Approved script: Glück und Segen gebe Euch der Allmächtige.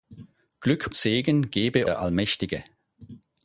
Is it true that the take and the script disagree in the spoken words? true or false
true